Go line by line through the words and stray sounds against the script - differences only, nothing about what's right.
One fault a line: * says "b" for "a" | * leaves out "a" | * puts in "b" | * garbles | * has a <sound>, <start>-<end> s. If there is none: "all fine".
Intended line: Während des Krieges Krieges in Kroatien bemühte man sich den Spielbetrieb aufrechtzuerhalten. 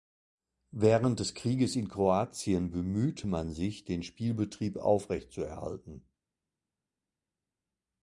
* leaves out "Krieges"